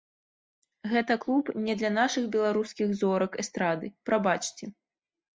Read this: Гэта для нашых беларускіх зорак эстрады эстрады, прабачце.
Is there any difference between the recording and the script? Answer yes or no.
yes